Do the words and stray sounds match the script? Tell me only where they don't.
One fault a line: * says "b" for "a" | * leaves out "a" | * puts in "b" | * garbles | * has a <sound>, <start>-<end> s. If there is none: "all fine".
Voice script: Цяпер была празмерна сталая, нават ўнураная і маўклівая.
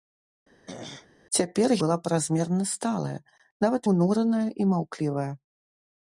* has a throat clearing, 0.7-1.1 s